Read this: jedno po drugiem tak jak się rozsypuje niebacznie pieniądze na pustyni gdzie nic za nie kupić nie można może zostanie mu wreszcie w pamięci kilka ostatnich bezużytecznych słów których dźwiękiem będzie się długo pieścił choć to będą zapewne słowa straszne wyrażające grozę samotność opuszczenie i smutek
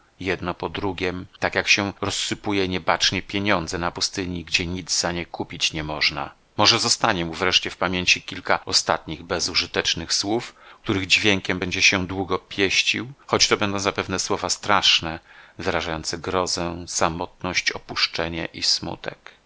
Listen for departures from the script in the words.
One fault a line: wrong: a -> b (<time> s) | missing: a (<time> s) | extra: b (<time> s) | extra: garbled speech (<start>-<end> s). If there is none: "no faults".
no faults